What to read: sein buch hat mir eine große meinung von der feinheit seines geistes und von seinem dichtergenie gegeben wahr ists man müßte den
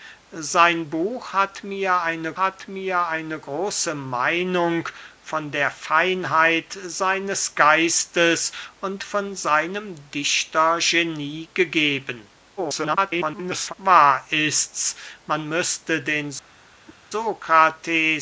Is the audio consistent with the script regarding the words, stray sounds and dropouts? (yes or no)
no